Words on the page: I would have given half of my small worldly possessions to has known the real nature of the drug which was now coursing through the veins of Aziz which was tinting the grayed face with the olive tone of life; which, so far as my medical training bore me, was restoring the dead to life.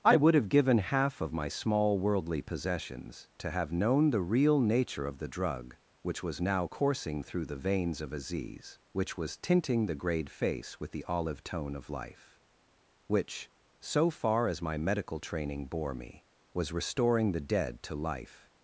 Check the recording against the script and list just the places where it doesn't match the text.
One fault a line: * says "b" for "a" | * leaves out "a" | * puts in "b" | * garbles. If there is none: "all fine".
* says "have" for "has"